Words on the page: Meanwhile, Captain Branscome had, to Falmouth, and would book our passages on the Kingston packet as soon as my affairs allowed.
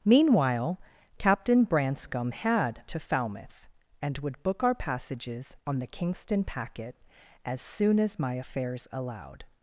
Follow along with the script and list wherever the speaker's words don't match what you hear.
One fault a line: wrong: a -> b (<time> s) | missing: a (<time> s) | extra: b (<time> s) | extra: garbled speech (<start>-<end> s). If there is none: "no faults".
no faults